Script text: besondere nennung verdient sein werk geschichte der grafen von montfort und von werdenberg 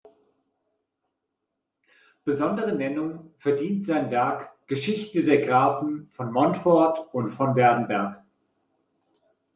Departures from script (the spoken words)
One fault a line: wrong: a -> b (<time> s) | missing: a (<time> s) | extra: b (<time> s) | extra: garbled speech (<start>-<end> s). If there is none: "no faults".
no faults